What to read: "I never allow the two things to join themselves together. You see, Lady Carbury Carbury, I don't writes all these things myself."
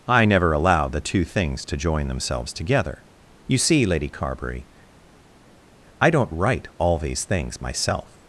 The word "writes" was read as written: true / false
false